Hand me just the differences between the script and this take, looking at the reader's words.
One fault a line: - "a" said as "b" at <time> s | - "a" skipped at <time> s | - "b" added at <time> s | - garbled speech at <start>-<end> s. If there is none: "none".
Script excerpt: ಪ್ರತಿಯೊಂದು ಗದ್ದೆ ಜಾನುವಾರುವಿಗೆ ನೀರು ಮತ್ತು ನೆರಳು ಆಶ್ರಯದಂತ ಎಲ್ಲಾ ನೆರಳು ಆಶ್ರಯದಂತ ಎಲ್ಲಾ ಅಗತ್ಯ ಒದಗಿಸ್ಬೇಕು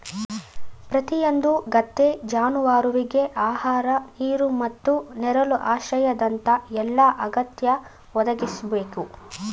- "ಆಹಾರ" added at 3.4 s
- "ನೆರಳು ಆಶ್ರಯದಂತ ಎಲ್ಲಾ" skipped at 7.1 s